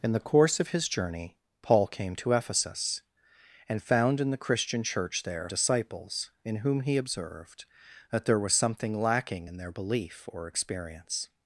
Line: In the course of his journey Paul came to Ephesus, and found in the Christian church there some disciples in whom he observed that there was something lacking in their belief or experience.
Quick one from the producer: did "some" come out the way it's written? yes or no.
no